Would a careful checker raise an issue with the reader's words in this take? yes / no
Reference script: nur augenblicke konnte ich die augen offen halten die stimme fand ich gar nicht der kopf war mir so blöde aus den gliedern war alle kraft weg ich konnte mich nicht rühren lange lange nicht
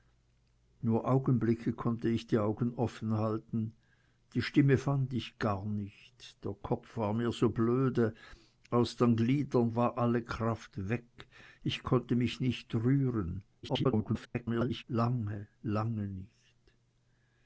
yes